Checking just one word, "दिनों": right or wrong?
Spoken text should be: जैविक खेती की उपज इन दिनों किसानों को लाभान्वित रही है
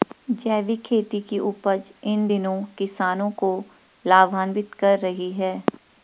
right